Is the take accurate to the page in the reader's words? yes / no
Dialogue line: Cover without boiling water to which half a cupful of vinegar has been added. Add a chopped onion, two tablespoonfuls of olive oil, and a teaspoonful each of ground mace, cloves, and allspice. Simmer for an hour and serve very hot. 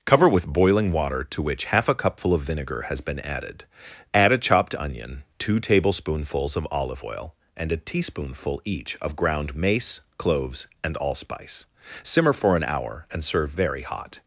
no